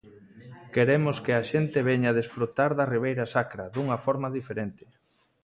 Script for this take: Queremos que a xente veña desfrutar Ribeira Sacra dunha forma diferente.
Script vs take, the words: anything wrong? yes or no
yes